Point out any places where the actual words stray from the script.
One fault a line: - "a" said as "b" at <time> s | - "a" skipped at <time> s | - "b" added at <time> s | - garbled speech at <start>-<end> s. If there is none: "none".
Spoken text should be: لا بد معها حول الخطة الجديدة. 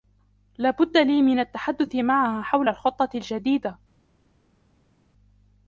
- "لي من التحدث" added at 1.0 s